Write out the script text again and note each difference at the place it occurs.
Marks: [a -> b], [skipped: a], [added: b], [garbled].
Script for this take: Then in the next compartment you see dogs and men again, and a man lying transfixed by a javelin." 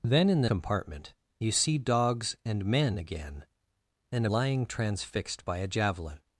Then in the [skipped: next] compartment you see dogs and men again, and a [skipped: man] lying transfixed by a javelin."